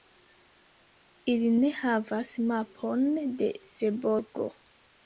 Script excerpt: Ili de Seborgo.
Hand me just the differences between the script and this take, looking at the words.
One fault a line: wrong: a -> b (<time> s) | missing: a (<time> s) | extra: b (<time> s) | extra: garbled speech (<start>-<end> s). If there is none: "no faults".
extra: ne havas mapon (1.6 s)